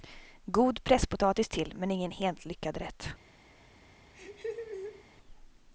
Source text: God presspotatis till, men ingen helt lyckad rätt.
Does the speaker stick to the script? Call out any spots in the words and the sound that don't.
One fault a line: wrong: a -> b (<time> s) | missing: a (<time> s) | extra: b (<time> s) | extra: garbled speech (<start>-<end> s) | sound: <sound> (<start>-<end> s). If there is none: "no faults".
sound: laugh (4.1-5.0 s)